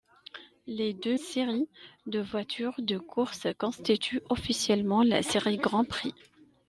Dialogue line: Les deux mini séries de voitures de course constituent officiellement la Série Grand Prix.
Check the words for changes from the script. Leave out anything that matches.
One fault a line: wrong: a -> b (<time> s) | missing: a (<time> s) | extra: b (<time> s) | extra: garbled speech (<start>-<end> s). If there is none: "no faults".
missing: mini (1.2 s)